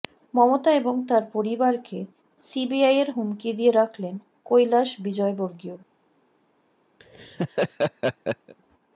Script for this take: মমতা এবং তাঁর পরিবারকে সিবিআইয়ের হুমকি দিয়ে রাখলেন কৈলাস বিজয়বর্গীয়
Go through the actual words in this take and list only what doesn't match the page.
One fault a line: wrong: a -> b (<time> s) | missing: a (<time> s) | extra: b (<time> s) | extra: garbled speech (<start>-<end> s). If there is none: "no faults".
no faults